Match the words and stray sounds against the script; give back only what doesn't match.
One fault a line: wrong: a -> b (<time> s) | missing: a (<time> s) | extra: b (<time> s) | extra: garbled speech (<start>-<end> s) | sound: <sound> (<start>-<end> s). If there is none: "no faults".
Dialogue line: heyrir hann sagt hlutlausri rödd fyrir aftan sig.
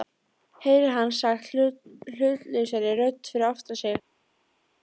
no faults